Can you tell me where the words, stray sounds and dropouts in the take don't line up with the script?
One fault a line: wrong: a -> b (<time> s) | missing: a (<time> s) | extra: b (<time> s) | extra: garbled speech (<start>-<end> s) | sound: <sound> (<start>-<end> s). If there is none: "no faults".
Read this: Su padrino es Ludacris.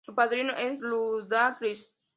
no faults